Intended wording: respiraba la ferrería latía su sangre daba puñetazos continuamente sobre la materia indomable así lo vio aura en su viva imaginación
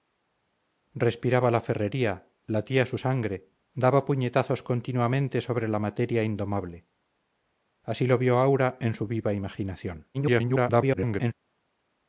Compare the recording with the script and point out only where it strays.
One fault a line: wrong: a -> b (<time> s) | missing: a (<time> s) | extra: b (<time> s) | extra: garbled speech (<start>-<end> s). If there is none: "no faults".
extra: garbled speech (10.1-11.3 s)